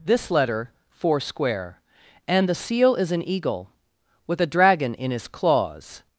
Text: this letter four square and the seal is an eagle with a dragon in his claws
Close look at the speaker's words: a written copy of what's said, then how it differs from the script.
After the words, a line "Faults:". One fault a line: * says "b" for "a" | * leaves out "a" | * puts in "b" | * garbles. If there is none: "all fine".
this letter four square and the seal is an eagle with a dragon in his claws
Faults:
all fine